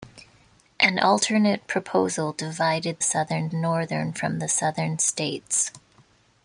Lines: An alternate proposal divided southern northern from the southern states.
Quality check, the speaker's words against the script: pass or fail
pass